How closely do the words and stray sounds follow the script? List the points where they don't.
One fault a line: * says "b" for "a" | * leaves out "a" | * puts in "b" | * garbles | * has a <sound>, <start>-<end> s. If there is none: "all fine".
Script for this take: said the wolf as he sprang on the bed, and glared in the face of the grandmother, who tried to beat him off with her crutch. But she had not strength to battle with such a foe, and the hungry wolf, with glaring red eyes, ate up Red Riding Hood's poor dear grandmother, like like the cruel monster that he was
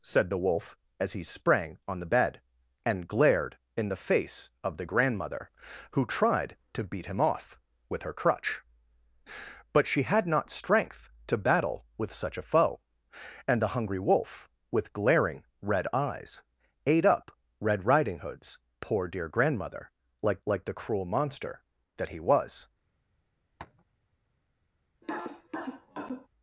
* has a tap, 23.6-23.8 s
* has a cough, 25.0-26.3 s